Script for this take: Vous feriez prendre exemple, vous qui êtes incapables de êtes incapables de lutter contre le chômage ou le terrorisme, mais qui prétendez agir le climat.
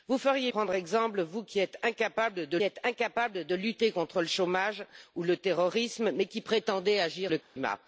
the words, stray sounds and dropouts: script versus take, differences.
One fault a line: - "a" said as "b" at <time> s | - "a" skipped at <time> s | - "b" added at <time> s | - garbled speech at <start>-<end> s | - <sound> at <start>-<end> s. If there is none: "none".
- dropout at 7.4-7.6 s